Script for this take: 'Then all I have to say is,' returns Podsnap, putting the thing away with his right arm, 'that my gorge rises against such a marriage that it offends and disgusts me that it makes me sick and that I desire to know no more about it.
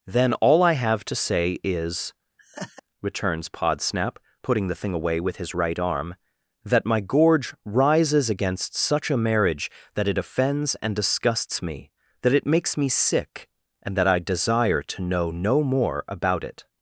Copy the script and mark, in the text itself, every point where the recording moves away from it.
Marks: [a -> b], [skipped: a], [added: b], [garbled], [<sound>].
'Then all I have to say is,' [laugh] returns Podsnap, putting the thing away with his right arm, 'that my gorge rises against such a marriage that it offends and disgusts me that it makes me sick and that I desire to know no more about it.